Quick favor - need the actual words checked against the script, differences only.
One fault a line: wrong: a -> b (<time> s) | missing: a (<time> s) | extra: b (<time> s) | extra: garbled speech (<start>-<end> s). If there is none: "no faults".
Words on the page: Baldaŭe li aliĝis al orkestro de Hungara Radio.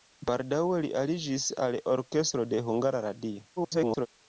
extra: garbled speech (3.6-4.1 s)